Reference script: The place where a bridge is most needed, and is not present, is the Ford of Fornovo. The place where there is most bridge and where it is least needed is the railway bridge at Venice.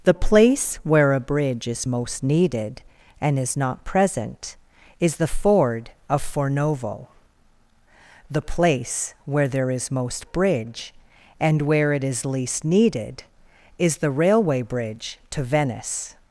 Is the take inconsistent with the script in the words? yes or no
yes